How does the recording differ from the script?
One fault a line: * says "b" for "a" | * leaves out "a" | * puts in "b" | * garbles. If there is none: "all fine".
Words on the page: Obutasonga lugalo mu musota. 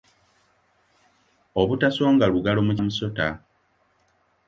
all fine